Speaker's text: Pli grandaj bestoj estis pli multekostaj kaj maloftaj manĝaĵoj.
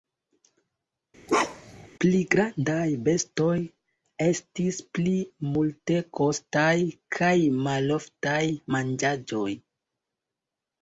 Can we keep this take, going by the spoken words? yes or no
yes